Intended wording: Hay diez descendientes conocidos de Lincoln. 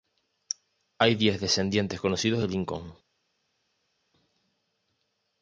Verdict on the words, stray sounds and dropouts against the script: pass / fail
pass